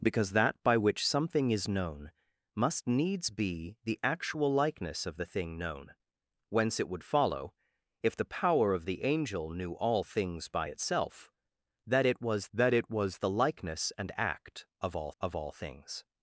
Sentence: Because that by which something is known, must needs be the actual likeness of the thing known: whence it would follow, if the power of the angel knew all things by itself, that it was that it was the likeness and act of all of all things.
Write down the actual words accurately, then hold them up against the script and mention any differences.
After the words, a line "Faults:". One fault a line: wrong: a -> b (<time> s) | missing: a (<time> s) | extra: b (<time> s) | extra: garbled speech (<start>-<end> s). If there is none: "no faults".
Because that by which something is known, must needs be the actual likeness of the thing known: whence it would follow, if the power of the angel knew all things by itself, that it was that it was the likeness and act of all of all things.
Faults:
no faults